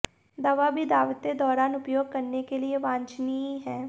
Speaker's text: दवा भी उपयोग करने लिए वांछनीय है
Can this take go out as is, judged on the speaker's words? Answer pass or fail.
fail